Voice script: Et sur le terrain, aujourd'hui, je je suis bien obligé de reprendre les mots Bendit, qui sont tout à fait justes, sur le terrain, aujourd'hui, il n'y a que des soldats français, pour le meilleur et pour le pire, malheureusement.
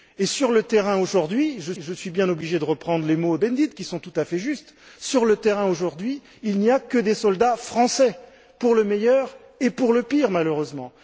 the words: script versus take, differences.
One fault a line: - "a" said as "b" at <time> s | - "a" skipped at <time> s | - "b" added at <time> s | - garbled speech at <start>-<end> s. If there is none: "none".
none